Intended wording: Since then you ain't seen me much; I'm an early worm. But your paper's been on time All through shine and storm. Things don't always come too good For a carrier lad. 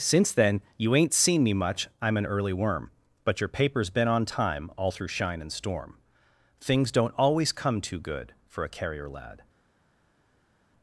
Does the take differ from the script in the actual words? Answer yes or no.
no